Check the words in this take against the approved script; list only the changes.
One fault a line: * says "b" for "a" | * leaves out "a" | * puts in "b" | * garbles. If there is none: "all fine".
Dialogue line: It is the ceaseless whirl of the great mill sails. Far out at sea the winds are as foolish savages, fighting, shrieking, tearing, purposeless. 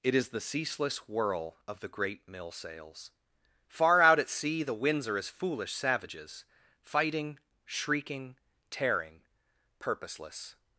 all fine